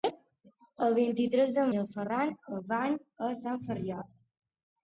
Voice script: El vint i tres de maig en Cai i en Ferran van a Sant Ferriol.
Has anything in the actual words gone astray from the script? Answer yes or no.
yes